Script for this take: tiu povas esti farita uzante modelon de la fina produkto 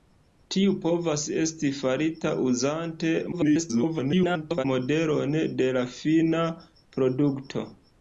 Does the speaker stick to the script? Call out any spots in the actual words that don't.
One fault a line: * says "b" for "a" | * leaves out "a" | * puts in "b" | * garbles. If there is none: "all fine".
* garbles